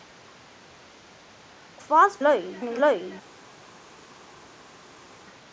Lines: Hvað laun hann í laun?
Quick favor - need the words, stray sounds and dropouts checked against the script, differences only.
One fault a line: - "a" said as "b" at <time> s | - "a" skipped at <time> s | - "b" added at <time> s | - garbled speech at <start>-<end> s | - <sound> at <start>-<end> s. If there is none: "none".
none